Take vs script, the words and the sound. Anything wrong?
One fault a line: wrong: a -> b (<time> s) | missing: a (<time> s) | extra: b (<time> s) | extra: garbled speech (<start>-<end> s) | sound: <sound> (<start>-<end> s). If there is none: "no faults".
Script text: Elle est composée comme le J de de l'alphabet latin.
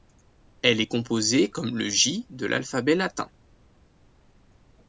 missing: de (2.5 s)